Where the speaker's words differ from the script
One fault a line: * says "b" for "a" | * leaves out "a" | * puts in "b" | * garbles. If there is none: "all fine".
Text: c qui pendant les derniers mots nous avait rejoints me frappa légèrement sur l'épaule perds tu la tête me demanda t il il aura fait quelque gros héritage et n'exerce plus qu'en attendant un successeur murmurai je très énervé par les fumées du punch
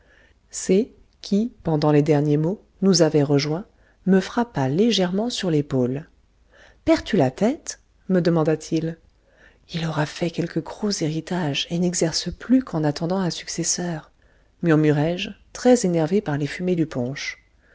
all fine